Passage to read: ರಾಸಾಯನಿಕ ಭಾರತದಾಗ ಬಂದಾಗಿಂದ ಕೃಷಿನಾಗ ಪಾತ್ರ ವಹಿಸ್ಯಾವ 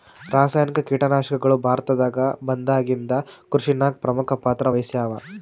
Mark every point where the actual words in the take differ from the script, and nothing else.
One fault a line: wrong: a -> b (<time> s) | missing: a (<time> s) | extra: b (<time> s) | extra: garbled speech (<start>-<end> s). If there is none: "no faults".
extra: ಕೀಟನಾಶಕಗಳು (0.9 s)
extra: ಪ್ರಮುಖ (4.0 s)